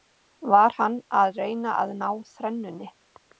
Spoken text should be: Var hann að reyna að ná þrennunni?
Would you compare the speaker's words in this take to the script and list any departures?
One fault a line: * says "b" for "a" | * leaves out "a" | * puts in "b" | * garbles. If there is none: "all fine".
all fine